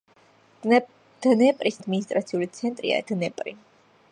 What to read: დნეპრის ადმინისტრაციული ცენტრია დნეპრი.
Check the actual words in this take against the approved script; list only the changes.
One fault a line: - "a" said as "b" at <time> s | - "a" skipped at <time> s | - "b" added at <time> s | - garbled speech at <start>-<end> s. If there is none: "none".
none